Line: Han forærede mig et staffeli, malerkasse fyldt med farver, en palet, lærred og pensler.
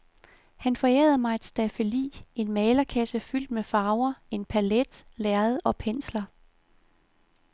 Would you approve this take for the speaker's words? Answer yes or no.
no